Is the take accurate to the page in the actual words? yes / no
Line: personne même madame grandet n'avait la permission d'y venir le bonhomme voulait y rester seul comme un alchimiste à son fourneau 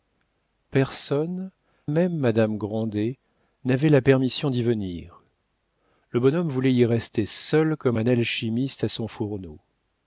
yes